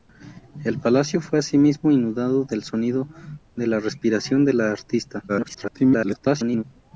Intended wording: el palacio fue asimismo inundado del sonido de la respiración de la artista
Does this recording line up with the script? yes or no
no